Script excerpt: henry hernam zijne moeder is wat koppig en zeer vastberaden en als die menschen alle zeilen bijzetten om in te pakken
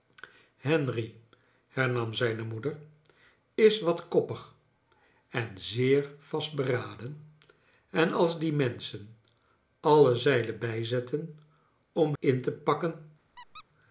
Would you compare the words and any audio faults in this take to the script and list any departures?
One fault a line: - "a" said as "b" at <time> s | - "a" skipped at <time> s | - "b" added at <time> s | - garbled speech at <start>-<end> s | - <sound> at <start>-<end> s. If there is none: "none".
- squeak at 13.4-13.6 s